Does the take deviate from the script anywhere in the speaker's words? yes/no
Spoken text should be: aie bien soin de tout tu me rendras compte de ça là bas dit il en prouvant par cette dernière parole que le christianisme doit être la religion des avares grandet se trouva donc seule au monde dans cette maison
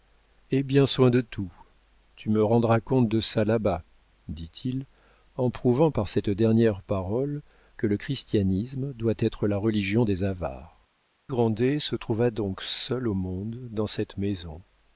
no